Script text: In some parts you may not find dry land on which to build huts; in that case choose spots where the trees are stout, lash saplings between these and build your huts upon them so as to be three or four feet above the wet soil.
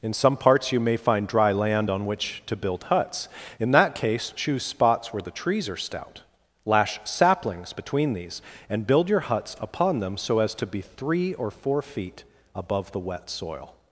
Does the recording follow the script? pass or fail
fail